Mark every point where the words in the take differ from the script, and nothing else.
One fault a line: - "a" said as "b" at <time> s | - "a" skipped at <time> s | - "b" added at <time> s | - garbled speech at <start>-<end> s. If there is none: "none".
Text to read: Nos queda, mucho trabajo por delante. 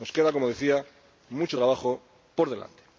- "como decía" added at 0.3 s